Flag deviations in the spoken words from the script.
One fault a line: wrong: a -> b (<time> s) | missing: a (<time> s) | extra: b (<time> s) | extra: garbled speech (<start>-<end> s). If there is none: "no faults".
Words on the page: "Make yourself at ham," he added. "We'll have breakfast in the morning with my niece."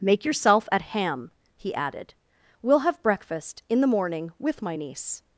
no faults